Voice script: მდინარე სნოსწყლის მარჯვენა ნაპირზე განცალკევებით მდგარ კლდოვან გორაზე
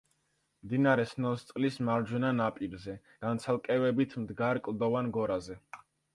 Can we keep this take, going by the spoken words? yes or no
yes